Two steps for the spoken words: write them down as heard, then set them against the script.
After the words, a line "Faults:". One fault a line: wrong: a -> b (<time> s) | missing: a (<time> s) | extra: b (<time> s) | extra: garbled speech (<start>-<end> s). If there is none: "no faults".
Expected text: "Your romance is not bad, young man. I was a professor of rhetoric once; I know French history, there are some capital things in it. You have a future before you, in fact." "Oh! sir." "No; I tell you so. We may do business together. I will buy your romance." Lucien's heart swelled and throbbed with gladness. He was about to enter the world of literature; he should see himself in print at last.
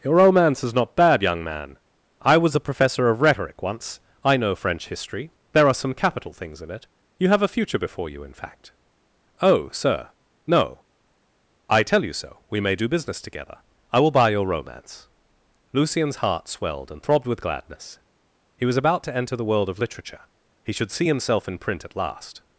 "Your romance is not bad, young man. I was a professor of rhetoric once; I know French history, there are some capital things in it. You have a future before you, in fact." "Oh! sir." "No; I tell you so. We may do business together. I will buy your romance." Lucien's heart swelled and throbbed with gladness. He was about to enter the world of literature; he should see himself in print at last.
Faults:
no faults